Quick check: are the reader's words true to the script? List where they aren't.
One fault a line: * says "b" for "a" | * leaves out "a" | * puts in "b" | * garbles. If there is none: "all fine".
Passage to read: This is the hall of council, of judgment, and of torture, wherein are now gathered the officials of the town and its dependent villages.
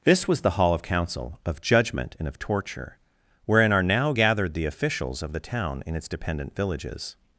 * says "was" for "is"
* says "in" for "and"